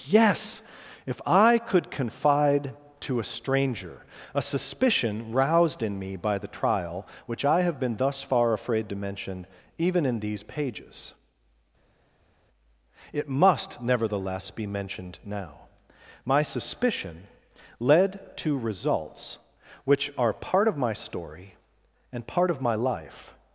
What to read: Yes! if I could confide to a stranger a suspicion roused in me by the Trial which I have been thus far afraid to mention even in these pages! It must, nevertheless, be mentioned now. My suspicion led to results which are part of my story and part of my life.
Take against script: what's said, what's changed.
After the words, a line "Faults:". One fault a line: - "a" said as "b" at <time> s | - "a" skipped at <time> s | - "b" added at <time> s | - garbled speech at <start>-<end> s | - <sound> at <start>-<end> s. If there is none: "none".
Yes! if I could confide to a stranger a suspicion roused in me by the Trial which I have been thus far afraid to mention even in these pages! It must, nevertheless, be mentioned now. My suspicion led to results which are part of my story and part of my life.
Faults:
none